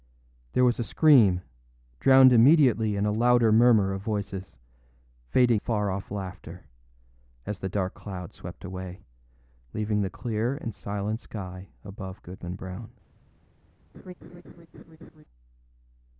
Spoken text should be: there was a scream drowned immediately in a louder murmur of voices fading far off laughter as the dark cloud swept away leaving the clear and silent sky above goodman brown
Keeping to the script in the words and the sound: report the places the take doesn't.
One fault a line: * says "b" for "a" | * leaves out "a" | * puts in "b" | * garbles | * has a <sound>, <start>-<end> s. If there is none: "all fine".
* has a laugh, 13.9-15.2 s